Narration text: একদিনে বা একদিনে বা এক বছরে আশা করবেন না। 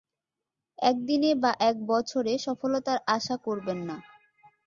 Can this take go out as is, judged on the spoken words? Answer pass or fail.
fail